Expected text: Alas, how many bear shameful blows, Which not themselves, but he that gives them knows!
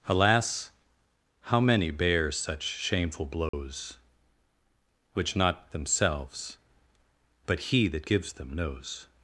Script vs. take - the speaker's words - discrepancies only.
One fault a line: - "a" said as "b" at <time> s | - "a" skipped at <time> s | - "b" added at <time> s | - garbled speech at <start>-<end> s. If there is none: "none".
- "such" added at 2.3 s